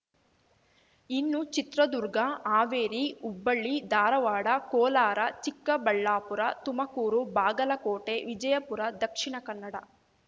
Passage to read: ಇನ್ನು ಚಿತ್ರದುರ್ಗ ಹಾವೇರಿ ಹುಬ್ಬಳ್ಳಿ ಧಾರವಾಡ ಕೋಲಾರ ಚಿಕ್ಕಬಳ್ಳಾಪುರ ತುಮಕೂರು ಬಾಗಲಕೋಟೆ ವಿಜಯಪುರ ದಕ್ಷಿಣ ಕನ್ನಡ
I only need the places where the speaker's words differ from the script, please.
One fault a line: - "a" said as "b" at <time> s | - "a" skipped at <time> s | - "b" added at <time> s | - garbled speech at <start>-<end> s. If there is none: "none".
none